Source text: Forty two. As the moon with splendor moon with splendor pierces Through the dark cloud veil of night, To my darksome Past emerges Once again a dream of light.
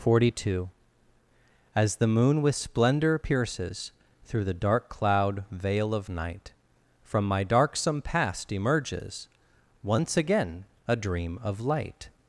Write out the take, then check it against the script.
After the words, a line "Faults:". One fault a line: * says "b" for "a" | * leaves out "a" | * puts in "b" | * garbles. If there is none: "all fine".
Forty two. As the moon with splendor pierces Through the dark cloud veil of night, From my darksome Past emerges Once again a dream of light.
Faults:
* leaves out "moon with splendor"
* says "From" for "To"